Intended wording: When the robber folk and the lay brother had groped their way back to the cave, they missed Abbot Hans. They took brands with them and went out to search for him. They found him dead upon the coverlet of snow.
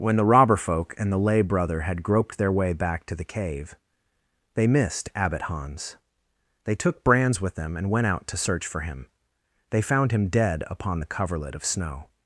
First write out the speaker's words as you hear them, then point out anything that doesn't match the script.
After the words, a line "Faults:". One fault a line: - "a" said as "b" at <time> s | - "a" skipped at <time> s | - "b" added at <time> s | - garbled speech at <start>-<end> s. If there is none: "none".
When the robber folk and the lay brother had groped their way back to the cave, they missed Abbot Hans. They took brands with them and went out to search for him. They found him dead upon the coverlet of snow.
Faults:
none